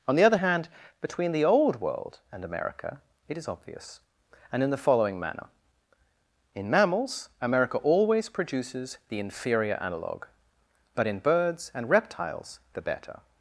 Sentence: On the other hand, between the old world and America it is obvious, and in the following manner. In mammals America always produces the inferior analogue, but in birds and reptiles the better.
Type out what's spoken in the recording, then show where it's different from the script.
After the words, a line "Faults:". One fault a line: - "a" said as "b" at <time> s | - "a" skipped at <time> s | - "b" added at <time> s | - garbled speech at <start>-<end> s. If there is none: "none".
On the other hand, between the old world and America it is obvious, and in the following manner. In mammals America always produces the inferior analogue, but in birds and reptiles the better.
Faults:
none